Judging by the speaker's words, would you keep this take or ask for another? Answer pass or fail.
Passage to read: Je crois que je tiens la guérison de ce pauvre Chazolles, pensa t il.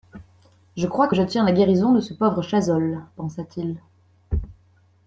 pass